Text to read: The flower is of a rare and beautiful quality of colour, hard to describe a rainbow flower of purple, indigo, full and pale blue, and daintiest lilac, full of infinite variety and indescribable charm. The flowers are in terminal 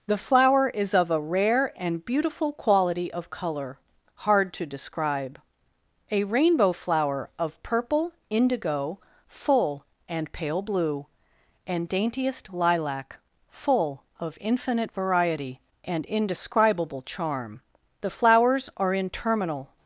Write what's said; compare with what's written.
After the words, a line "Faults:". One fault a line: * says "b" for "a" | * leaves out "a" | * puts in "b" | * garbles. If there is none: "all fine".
The flower is of a rare and beautiful quality of colour, hard to describe a rainbow flower of purple, indigo, full and pale blue, and daintiest lilac, full of infinite variety and indescribable charm. The flowers are in terminal
Faults:
all fine